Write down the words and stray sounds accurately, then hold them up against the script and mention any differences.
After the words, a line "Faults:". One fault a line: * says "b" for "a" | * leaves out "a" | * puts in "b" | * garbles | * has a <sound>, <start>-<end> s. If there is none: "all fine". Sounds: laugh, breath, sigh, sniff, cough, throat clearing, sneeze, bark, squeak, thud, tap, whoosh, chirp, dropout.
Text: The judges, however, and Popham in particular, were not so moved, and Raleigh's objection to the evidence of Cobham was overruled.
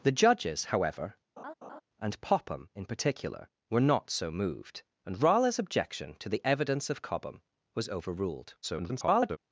The judges, however, and Popham in particular, were not so moved, and Raleigh's objection to the evidence of Cobham was overruled. [garbled]
Faults:
* has a laugh, 1.4-1.8 s
* garbles